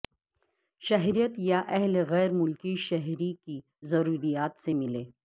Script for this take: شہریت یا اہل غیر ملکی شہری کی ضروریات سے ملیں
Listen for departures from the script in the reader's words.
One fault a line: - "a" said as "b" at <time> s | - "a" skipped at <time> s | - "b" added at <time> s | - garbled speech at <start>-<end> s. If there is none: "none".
none